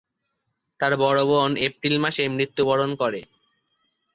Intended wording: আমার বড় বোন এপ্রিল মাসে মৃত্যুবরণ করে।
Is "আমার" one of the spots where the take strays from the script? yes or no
yes